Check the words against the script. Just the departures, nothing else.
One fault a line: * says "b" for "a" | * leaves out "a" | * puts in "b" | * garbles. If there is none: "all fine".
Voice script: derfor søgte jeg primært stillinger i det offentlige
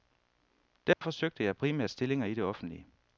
all fine